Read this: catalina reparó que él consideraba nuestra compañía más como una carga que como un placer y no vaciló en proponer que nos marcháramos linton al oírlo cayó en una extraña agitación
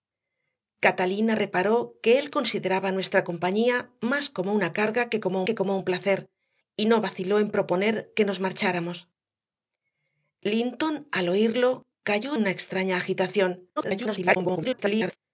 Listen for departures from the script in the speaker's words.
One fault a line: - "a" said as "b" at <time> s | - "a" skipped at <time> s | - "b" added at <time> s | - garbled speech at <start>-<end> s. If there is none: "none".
- "que como" added at 5.4 s
- "en" skipped at 12.3 s
- garbled speech at 13.8-15.2 s